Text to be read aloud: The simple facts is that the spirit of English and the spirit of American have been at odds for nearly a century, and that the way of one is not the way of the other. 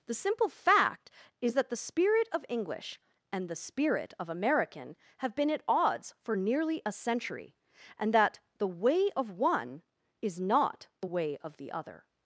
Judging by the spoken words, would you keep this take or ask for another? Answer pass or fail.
fail